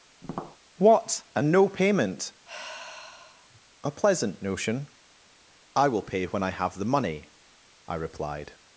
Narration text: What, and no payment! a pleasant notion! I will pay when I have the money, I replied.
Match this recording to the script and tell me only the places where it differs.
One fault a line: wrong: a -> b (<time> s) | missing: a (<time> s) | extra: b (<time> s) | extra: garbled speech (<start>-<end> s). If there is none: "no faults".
no faults